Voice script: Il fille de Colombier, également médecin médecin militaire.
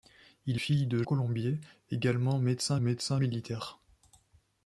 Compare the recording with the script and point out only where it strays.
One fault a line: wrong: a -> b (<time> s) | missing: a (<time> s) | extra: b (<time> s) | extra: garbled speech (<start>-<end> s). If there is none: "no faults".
no faults